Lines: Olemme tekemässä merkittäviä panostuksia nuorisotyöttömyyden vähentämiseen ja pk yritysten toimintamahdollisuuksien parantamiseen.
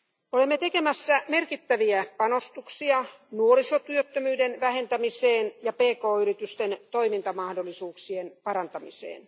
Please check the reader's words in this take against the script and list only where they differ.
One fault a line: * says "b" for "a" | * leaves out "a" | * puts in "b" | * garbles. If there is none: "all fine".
all fine